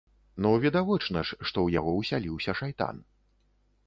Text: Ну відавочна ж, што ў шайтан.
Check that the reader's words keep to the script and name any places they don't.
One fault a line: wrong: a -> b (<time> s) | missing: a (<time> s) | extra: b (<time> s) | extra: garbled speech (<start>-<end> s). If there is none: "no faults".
extra: яго ўсяліўся (1.8 s)